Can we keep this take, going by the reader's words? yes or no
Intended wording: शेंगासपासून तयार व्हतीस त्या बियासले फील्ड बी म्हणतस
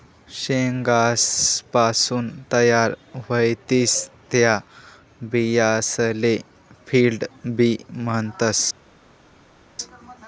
yes